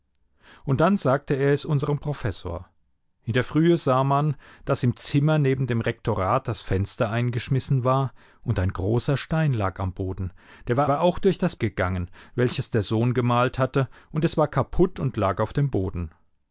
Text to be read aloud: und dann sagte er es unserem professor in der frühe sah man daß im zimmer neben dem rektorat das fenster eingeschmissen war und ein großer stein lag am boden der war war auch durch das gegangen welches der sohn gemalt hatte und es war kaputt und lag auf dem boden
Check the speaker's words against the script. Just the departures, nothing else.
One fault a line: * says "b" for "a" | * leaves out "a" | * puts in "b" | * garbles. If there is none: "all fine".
all fine